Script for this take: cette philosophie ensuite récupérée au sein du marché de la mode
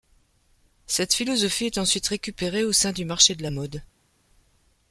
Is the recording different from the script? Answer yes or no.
yes